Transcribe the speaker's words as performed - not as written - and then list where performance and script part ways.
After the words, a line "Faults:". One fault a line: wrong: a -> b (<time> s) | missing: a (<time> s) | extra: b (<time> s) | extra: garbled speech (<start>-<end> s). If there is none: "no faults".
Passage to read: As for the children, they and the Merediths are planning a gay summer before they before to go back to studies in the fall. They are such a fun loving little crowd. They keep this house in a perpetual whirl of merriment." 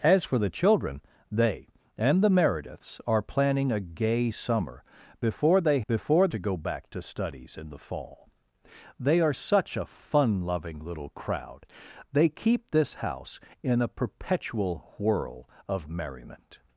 As for the children, they and the Merediths are planning a gay summer before they before to go back to studies in the fall. They are such a fun loving little crowd. They keep this house in a perpetual whirl of merriment."
Faults:
no faults